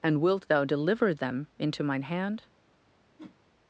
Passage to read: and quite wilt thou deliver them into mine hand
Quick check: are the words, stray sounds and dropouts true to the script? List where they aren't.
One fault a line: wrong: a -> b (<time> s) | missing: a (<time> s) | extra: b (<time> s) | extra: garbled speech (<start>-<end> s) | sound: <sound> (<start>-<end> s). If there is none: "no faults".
missing: quite (0.2 s)
sound: whoosh (3.2-3.4 s)